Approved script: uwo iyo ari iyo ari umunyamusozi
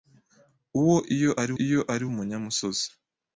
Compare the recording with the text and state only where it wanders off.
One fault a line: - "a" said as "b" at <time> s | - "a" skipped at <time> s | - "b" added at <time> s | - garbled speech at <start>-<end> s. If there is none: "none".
none